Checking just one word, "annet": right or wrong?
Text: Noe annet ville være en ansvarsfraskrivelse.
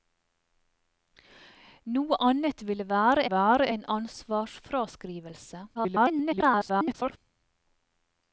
right